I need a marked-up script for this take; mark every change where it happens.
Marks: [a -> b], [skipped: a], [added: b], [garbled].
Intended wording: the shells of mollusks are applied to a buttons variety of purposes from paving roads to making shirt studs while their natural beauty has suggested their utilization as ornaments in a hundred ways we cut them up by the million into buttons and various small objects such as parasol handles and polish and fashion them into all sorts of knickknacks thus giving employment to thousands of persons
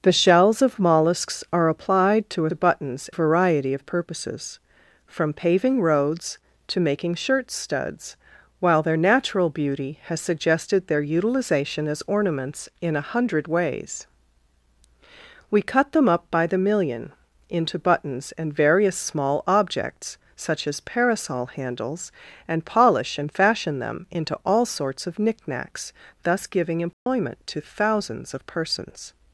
the shells of mollusks are applied to a buttons variety of purposes from paving roads to making shirt studs while their natural beauty has suggested their utilization as ornaments in a hundred ways we cut them up by the million into buttons and various small objects such as parasol handles and polish and fashion them into all sorts of knickknacks thus giving employment to thousands of persons